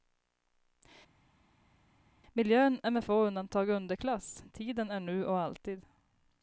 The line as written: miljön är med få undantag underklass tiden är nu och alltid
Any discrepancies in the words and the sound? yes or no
no